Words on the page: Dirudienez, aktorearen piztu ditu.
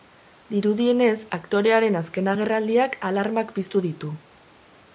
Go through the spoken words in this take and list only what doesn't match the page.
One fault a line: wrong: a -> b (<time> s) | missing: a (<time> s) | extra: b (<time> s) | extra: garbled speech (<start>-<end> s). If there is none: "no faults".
extra: azken agerraldiak alarmak (2.0 s)